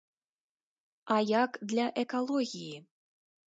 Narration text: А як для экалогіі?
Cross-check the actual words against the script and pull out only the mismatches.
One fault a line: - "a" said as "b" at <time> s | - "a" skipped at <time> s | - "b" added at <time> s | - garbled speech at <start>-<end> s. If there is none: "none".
none